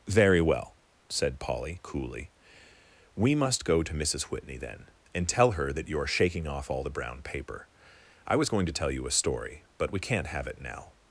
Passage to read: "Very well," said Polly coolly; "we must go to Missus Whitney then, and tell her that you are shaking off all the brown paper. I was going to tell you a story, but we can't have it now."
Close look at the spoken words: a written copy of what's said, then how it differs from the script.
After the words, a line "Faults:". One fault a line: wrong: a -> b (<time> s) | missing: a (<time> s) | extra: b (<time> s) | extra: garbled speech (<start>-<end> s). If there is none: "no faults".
"Very well," said Polly coolly; "we must go to Missus Whitney then, and tell her that you are shaking off all the brown paper. I was going to tell you a story, but we can't have it now."
Faults:
no faults